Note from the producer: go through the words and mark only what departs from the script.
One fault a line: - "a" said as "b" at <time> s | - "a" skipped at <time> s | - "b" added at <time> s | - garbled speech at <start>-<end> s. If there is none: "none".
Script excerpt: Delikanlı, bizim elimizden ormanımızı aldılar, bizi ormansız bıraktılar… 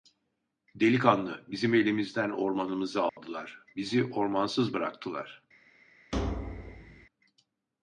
none